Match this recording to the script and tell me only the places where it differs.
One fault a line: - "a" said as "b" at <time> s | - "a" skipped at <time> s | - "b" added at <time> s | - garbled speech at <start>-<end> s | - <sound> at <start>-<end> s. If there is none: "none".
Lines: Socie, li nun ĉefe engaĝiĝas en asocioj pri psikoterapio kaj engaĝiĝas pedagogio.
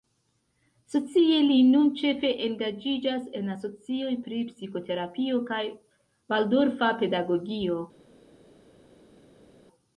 - "engaĝiĝas" said as "valdorfa" at 6.3 s